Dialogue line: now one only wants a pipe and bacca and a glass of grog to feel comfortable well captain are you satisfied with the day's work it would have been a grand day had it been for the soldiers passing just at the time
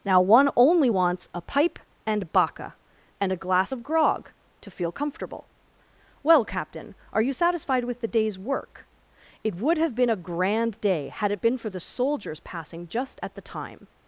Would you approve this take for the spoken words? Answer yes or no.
yes